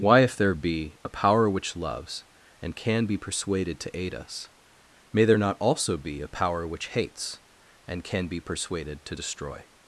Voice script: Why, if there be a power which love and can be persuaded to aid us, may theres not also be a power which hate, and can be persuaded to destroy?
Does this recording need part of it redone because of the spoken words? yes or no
yes